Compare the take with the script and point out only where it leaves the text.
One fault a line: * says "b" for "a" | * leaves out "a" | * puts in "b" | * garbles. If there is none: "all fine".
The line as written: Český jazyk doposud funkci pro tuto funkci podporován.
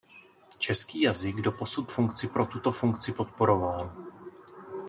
all fine